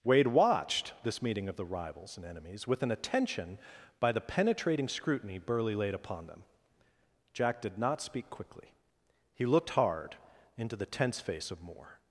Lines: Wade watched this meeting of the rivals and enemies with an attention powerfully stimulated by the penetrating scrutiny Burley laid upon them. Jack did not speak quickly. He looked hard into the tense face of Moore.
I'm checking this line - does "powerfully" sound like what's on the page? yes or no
no